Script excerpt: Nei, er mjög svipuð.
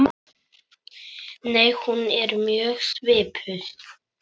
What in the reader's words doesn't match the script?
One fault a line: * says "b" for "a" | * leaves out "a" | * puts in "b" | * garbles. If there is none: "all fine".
* puts in "hún"